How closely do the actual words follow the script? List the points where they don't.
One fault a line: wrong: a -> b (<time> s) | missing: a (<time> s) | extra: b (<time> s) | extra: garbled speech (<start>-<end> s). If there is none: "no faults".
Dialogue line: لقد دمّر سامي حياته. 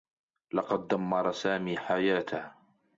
no faults